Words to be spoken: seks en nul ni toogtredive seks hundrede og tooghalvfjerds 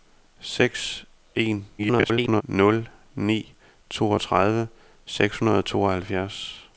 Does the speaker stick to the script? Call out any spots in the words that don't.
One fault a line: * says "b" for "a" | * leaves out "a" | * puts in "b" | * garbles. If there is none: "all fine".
* garbles